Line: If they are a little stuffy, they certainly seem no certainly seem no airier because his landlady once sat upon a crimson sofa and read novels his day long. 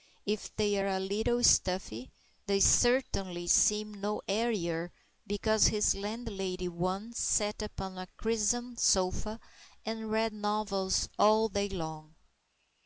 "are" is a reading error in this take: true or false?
false